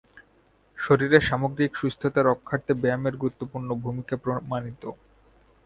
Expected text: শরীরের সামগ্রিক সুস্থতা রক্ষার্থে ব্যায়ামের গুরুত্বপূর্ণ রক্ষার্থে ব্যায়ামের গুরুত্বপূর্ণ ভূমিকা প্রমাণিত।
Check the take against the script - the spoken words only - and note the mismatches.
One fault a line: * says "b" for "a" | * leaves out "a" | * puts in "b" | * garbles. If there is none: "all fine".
* leaves out "রক্ষার্থে ব্যায়ামের গুরুত্বপূর্ণ"